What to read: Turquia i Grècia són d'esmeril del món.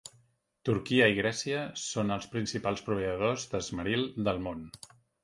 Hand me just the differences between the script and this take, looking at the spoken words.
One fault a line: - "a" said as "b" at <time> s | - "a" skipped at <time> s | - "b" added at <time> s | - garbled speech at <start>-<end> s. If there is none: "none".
- "els principals proveïdors" added at 2.1 s